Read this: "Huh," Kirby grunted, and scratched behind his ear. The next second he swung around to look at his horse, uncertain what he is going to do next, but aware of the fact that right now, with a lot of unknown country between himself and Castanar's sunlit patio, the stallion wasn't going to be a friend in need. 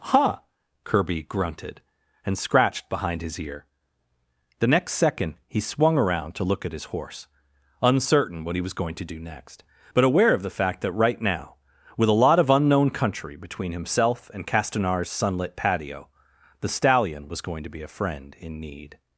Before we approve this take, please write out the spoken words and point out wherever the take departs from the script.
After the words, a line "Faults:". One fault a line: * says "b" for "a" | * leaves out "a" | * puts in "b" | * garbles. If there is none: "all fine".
"Huh," Kirby grunted, and scratched behind his ear. The next second he swung around to look at his horse, uncertain what he was going to do next, but aware of the fact that right now, with a lot of unknown country between himself and Castanar's sunlit patio, the stallion was going to be a friend in need.
Faults:
* says "was" for "is"
* says "was" for "wasn't"